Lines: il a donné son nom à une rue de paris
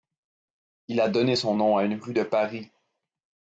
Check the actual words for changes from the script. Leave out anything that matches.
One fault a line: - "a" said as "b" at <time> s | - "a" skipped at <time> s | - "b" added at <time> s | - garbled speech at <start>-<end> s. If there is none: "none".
none